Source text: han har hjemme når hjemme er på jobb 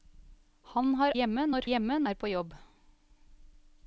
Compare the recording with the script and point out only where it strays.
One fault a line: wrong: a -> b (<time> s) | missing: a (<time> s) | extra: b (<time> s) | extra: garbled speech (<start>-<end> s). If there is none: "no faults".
no faults